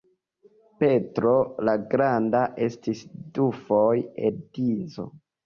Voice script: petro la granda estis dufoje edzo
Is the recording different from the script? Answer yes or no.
no